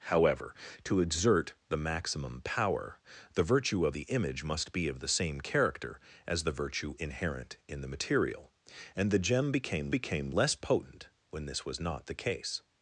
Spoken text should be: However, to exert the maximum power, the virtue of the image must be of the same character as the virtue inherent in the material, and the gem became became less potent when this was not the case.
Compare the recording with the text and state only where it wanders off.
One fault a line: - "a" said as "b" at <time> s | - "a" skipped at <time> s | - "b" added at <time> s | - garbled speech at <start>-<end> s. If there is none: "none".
none